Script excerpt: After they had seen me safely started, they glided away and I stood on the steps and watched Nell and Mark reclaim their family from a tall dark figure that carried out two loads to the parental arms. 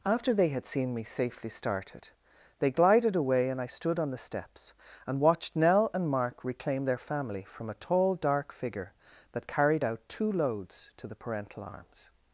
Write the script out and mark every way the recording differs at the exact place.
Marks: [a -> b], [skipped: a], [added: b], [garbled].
After they had seen me safely started, they glided away and I stood on the steps and watched Nell and Mark reclaim their family from a tall dark figure that carried out two loads to the parental arms.